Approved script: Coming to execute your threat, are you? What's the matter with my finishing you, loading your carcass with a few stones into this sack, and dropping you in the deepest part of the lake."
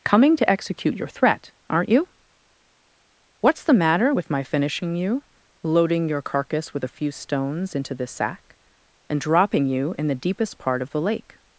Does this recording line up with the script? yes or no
no